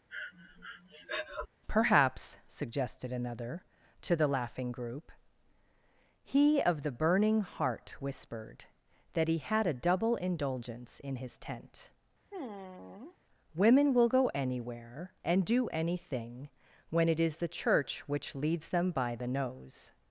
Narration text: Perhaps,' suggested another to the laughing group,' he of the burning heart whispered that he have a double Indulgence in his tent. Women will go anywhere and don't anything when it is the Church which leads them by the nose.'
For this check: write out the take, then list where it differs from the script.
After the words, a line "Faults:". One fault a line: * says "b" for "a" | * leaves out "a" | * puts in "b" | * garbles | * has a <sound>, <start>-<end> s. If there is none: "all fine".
Perhaps,' suggested another to the laughing group,' he of the burning heart whispered that he had a double Indulgence in his tent. Women will go anywhere and do anything when it is the Church which leads them by the nose.'
Faults:
* has a breath, 0.1-1.5 s
* says "had" for "have"
* has a sigh, 12.3-13.2 s
* says "do" for "don't"